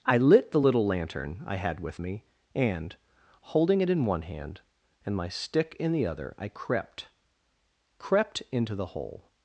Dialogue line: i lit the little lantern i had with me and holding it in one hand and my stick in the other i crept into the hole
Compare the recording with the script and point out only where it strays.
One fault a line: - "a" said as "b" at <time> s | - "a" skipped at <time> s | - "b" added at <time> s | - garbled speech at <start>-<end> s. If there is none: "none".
- "crept" added at 8.0 s